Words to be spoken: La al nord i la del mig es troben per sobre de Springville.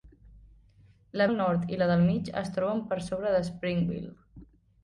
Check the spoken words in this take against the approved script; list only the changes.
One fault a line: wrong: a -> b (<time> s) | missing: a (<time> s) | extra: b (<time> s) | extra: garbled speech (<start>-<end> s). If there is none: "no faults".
no faults